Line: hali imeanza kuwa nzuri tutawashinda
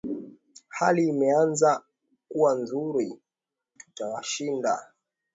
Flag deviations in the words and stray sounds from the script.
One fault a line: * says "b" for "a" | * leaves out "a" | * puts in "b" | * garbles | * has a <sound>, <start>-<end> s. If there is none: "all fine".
all fine